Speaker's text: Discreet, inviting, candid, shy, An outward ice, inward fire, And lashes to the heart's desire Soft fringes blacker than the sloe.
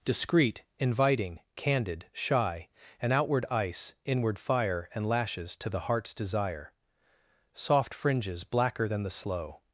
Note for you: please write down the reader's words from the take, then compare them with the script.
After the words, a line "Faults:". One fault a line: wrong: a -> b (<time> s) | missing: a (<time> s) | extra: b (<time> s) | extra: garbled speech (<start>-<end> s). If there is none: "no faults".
Discreet, inviting, candid, shy, An outward ice, inward fire, And lashes to the heart's desire Soft fringes blacker than the sloe.
Faults:
no faults